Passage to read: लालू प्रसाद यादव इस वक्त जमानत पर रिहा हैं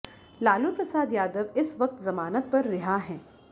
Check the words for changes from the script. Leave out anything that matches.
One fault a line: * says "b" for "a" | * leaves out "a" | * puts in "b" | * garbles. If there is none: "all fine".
all fine